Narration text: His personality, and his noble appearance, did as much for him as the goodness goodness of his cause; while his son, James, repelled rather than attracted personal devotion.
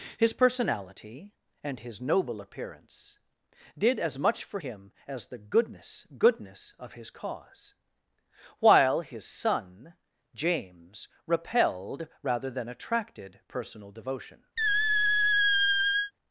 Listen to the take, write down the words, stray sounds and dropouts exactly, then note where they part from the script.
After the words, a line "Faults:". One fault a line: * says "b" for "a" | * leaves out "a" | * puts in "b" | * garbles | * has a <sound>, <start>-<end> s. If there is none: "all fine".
His personality, and his noble appearance, did as much for him as the goodness goodness of his cause; while his son, James, repelled rather than attracted personal devotion.
Faults:
* has a squeak, 14.6-16.1 s